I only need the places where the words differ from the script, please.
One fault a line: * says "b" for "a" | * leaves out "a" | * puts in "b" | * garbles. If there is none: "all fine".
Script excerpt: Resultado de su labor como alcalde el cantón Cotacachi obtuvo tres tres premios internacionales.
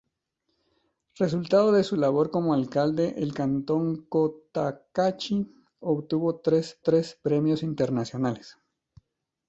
all fine